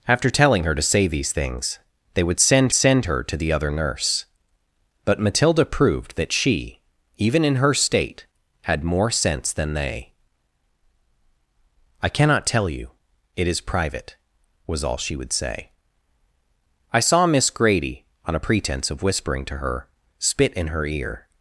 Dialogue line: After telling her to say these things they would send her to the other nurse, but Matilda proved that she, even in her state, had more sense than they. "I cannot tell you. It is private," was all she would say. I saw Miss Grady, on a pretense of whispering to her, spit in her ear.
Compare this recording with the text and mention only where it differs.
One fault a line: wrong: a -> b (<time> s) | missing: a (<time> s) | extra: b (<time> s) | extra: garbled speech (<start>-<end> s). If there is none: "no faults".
extra: send (2.7 s)